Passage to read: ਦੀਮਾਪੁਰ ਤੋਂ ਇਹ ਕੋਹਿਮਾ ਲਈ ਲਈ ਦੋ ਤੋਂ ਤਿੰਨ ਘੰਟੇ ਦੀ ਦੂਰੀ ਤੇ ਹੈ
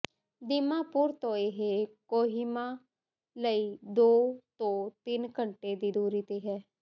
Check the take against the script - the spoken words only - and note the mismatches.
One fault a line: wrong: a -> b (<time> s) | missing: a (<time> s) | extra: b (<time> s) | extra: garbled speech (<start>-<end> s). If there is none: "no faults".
missing: ਲਈ (3.8 s)